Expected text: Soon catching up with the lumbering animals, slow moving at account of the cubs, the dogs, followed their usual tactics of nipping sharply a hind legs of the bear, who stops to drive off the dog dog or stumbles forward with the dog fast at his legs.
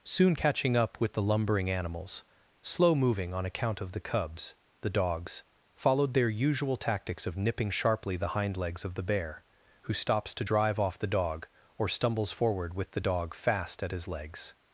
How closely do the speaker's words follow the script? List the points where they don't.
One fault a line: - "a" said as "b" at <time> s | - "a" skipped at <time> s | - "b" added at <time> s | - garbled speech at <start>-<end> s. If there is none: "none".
- "at" said as "on" at 3.3 s
- "a" said as "the" at 8.1 s
- "dog" skipped at 11.5 s